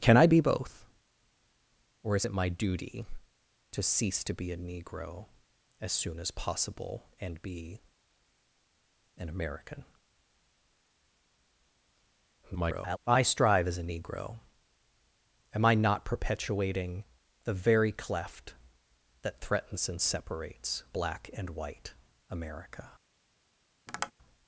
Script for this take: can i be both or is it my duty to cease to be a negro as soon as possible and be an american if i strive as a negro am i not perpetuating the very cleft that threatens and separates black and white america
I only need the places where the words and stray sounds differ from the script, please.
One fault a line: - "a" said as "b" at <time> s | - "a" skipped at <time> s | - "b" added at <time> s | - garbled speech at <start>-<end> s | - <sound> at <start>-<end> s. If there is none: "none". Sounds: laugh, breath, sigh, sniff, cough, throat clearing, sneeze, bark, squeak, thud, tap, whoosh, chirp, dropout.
- garbled speech at 12.4-13.0 s
- tap at 23.9-24.1 s